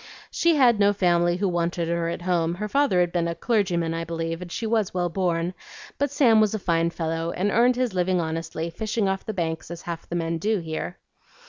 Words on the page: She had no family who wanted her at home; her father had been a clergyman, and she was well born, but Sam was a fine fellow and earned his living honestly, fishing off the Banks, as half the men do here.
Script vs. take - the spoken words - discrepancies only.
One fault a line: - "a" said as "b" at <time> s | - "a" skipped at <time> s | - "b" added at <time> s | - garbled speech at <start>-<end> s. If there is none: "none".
- "I believe" added at 3.9 s